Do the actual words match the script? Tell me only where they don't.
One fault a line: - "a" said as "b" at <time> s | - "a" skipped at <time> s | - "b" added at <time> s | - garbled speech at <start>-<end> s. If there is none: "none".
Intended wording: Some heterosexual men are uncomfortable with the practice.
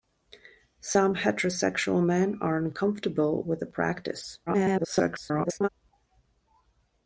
- garbled speech at 4.5-5.7 s